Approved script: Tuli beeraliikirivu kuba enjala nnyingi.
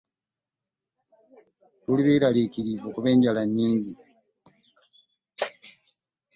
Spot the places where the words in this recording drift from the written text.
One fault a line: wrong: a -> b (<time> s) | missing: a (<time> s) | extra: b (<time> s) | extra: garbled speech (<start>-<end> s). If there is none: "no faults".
no faults